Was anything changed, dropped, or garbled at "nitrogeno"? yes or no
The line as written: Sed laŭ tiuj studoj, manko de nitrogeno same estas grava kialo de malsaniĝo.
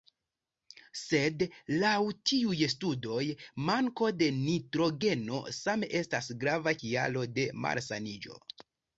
no